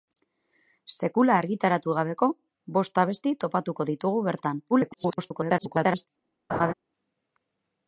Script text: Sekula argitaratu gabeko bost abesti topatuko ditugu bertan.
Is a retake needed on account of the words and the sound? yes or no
yes